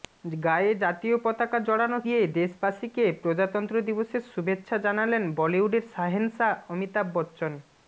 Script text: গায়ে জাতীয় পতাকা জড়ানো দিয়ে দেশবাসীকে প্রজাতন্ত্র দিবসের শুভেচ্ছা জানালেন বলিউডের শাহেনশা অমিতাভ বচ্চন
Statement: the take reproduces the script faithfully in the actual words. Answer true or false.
true